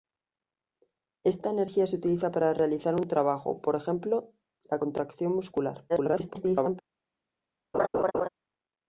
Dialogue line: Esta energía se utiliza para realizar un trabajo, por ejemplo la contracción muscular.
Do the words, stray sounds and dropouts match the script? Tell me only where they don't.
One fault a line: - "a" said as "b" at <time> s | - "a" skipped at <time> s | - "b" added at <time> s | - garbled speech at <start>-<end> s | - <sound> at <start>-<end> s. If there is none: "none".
- garbled speech at 5.9-6.8 s
- laugh at 7.7-8.3 s